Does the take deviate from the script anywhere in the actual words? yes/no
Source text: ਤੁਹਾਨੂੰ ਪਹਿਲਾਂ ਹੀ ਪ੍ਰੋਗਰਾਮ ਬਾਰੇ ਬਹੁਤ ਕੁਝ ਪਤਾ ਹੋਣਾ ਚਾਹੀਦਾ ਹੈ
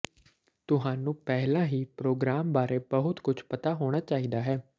no